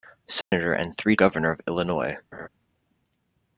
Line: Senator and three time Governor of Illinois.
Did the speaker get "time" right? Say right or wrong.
wrong